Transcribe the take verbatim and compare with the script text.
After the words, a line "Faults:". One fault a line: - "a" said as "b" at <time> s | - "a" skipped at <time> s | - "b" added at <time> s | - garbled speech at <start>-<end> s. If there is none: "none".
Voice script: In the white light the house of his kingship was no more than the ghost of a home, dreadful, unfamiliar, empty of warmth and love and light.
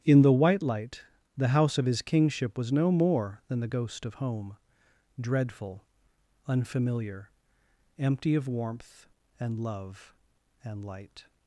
In the white light the house of his kingship was no more than the ghost of home, dreadful, unfamiliar, empty of warmth and love and light.
Faults:
- "a" skipped at 4.1 s